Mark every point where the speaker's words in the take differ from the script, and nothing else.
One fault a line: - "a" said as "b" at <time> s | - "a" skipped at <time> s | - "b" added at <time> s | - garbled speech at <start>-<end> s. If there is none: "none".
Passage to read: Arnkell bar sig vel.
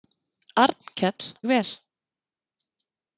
- "bar sig" skipped at 1.3 s